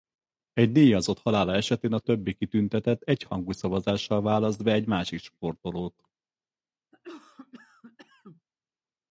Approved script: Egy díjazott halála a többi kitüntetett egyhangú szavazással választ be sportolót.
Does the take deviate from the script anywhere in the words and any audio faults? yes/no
yes